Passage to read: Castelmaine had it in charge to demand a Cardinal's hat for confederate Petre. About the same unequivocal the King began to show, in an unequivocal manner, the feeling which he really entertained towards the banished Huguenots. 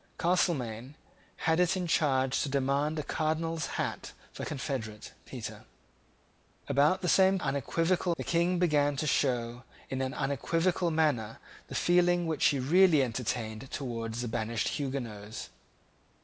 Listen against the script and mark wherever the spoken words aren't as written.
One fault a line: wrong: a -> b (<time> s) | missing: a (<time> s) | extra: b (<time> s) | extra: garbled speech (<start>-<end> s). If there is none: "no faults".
no faults